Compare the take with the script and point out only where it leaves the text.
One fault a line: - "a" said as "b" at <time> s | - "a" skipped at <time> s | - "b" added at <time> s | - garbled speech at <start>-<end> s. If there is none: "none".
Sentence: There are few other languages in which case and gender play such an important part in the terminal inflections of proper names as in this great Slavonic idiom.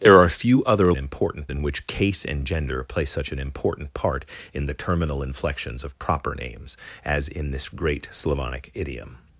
- "languages" said as "important" at 1.0 s